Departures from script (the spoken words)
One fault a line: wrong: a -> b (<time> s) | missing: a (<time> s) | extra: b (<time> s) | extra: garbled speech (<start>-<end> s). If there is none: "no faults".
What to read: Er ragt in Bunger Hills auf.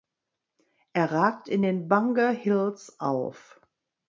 extra: den (1.6 s)